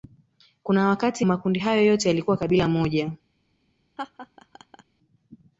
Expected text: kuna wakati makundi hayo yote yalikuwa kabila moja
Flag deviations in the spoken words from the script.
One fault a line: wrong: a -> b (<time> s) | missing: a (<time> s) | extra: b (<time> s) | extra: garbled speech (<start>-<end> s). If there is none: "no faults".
no faults